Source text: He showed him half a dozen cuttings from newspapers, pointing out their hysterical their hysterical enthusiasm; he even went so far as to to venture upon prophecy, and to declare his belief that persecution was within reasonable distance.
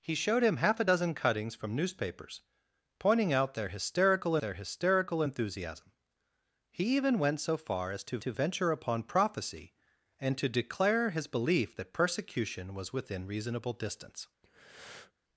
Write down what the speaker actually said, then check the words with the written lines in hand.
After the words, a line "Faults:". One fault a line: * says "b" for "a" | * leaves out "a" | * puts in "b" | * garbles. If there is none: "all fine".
He showed him half a dozen cuttings from newspapers, pointing out their hysterical their hysterical enthusiasm; he even went so far as to to venture upon prophecy, and to declare his belief that persecution was within reasonable distance.
Faults:
all fine